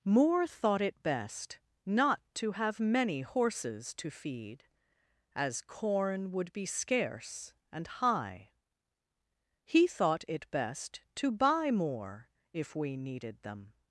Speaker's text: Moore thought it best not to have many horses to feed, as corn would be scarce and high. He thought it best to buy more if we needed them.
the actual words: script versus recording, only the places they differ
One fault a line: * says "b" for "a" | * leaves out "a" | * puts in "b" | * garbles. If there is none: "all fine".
all fine